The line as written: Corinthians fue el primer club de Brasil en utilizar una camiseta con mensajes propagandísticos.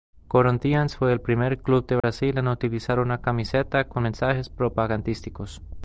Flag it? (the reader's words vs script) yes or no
no